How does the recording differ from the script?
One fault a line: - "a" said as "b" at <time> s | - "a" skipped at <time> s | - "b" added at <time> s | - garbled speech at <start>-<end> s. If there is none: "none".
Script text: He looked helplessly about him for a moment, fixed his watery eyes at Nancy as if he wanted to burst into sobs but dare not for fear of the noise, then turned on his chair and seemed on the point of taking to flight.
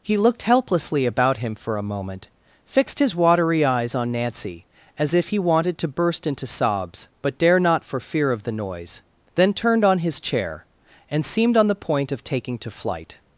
- "at" said as "on" at 3.9 s